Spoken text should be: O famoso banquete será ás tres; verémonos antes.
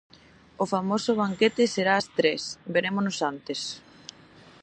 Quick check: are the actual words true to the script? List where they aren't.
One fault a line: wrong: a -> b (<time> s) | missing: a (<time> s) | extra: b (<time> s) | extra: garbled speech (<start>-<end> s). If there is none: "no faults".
no faults